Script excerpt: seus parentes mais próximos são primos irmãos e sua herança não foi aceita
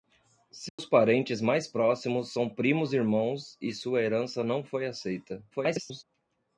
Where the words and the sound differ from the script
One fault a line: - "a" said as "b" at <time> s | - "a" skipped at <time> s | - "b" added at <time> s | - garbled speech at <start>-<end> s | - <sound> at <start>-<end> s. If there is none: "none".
- dropout at 0.7-0.8 s
- garbled speech at 5.5-6.0 s